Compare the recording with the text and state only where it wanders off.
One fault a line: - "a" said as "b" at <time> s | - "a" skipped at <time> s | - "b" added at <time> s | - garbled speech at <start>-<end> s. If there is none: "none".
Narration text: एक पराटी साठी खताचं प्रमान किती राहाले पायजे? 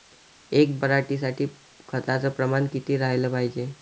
none